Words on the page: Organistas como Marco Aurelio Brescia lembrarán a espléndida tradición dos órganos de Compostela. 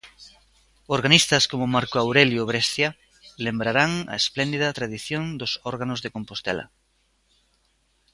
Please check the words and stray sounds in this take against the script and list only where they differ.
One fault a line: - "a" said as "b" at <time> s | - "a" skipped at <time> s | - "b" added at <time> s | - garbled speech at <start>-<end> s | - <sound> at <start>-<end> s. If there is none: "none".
none